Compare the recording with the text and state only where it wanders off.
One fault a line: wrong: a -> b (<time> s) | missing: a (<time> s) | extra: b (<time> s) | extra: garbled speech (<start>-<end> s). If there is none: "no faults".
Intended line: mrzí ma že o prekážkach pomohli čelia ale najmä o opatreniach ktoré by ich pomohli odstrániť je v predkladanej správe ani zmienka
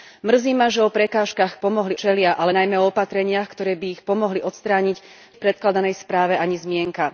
no faults